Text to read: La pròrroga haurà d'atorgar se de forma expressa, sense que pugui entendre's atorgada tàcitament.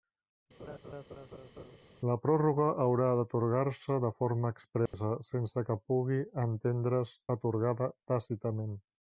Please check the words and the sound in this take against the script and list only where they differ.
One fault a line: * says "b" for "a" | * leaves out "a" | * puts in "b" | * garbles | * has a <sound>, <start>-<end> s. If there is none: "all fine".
* has a laugh, 0.6-1.8 s
* has a dropout, 4.9-4.9 s